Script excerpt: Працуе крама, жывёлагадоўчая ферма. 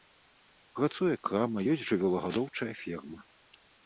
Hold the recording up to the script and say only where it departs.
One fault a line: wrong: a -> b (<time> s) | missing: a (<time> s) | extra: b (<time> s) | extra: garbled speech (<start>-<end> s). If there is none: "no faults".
extra: ёсць (1.7 s)